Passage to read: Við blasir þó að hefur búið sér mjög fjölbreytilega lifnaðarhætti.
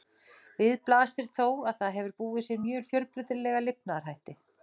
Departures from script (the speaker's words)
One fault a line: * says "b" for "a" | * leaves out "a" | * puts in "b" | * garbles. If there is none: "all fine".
* puts in "það"